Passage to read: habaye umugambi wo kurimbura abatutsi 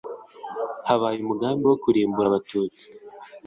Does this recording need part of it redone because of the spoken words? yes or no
no